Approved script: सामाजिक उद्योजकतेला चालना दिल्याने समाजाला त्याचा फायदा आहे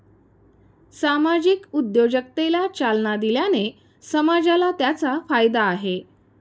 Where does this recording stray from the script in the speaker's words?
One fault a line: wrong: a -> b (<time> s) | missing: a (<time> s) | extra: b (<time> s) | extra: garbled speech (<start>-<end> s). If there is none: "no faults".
no faults